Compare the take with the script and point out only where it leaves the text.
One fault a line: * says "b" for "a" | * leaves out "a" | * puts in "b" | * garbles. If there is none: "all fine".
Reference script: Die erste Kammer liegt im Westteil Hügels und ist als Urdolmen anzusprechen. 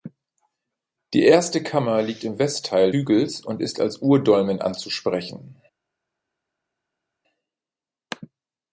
all fine